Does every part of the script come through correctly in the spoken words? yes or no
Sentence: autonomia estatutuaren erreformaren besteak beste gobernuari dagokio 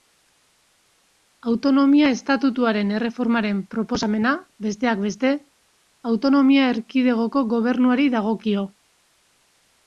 no